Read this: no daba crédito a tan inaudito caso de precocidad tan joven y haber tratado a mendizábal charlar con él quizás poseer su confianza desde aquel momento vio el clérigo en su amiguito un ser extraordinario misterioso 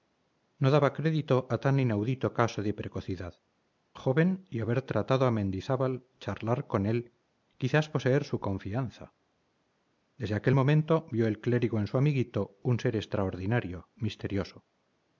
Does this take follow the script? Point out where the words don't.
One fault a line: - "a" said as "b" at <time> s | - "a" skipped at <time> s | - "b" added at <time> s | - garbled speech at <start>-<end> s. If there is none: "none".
- "tan" skipped at 3.3 s